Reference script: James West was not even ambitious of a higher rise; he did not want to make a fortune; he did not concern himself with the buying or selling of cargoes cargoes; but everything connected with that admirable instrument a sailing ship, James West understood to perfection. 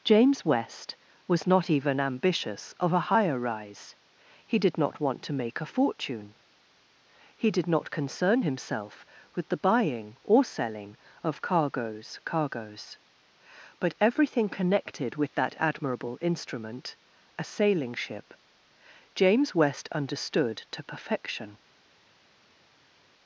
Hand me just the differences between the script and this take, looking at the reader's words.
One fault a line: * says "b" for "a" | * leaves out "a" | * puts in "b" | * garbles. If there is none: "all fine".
all fine